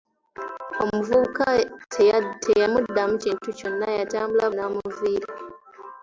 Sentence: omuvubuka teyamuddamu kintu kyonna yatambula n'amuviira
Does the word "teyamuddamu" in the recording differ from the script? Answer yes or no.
no